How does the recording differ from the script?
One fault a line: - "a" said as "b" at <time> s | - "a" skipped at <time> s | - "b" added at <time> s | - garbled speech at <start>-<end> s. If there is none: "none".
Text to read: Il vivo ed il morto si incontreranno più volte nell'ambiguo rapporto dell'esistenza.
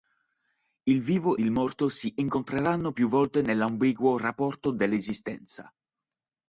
- "ed" skipped at 1.4 s